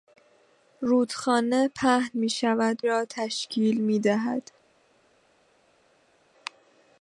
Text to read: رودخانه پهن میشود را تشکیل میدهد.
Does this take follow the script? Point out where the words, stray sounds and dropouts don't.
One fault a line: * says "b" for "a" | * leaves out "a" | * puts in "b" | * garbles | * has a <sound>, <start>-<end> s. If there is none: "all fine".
all fine